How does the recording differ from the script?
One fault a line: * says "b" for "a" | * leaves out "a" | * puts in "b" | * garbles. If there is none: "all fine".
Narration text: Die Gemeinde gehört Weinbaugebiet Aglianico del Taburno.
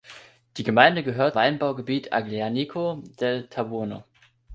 all fine